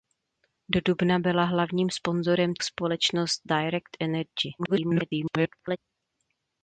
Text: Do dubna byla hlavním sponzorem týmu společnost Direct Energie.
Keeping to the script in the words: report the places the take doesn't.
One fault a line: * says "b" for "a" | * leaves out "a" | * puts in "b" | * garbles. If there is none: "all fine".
* leaves out "týmu"
* garbles